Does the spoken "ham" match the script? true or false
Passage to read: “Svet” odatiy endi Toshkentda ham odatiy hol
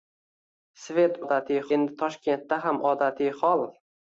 true